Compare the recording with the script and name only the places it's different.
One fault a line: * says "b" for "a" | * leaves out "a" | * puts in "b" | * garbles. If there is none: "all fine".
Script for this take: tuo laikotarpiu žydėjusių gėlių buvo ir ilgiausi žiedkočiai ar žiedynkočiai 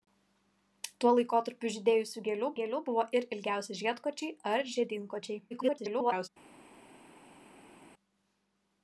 * puts in "gėlių"
* garbles